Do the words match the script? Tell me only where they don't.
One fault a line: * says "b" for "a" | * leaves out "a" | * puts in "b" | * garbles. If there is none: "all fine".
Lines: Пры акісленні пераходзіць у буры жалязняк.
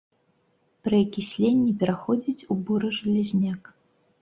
all fine